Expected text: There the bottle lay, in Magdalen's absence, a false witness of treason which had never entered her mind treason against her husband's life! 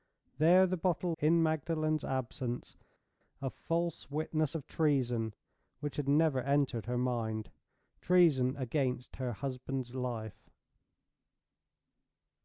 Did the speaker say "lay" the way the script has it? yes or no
no